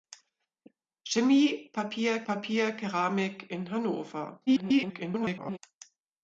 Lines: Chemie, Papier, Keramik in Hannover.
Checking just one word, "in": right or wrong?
right